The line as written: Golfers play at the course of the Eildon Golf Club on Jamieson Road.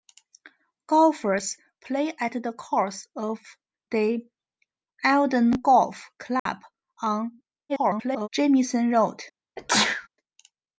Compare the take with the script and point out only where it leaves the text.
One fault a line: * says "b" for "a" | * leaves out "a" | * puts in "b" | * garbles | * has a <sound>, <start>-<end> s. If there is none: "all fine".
* has a dropout, 6.4-6.5 s
* garbles
* has a sneeze, 9.6-10.1 s